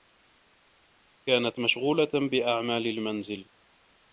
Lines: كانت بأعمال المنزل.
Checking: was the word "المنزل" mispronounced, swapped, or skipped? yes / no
no